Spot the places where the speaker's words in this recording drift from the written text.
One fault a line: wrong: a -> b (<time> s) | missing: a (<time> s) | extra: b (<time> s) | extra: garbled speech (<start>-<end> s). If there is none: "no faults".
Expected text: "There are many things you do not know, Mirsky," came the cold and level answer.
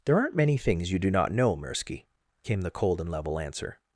wrong: are -> aren't (0.2 s)